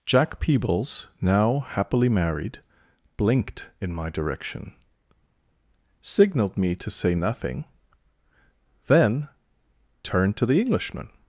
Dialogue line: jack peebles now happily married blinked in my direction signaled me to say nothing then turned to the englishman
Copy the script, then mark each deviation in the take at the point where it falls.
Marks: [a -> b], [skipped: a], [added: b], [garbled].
jack peebles now happily married blinked in my direction signaled me to say nothing then turned to the englishman